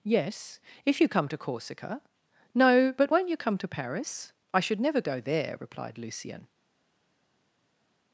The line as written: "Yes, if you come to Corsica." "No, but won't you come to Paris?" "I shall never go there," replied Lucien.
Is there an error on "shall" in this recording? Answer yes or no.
yes